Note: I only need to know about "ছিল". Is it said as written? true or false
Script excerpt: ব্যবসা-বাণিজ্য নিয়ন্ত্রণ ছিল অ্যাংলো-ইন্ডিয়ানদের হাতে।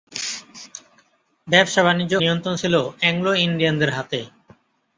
true